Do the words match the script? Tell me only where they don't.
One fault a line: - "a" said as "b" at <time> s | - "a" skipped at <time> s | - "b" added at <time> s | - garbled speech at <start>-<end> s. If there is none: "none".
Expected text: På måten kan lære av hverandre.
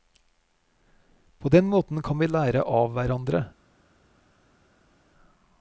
- "den" added at 1.5 s
- "vi" added at 2.2 s